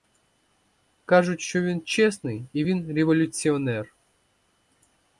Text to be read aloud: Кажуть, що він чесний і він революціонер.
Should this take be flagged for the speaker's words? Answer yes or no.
no